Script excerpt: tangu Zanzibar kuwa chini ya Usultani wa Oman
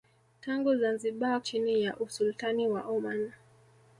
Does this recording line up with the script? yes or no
no